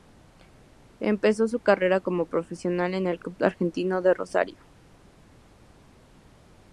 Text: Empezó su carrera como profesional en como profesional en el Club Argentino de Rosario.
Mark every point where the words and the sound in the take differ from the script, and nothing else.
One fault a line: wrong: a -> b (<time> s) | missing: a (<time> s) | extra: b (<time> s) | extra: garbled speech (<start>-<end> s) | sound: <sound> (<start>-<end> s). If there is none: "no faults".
missing: como profesional en (3.1 s)